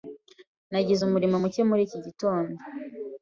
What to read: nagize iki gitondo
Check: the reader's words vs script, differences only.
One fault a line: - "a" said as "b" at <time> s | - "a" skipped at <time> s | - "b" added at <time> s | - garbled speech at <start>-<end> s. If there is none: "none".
- "umuriro muke muri" added at 1.0 s